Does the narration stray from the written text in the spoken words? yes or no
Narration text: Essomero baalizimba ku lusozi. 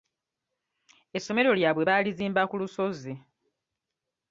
yes